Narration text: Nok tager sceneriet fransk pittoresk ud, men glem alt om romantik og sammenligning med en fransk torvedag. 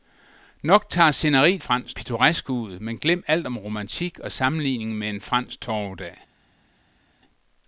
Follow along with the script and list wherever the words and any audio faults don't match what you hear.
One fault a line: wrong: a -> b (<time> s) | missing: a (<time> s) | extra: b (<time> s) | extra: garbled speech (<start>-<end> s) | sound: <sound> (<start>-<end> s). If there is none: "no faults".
no faults